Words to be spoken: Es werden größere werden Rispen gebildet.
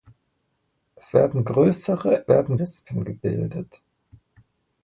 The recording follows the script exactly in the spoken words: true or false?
true